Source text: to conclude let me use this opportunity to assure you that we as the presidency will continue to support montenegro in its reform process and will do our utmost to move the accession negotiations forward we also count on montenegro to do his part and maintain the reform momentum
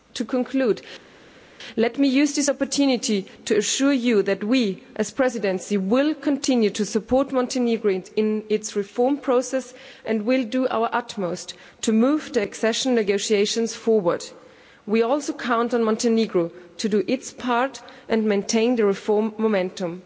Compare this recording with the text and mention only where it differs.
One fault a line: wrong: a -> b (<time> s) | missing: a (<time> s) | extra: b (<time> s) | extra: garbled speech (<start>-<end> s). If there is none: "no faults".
wrong: his -> its (17.1 s)